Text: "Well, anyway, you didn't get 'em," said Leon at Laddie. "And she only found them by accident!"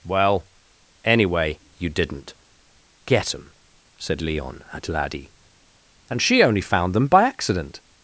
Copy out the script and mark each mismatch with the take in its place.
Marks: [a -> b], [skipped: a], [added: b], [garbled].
"Well, anyway, you didn't get 'em," said Leon at Laddie. "And she only found them by accident!"